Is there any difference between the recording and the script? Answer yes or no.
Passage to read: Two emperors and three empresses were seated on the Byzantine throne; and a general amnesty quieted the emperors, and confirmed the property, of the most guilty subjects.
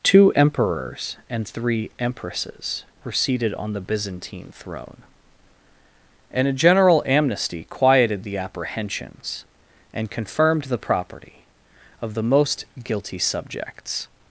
yes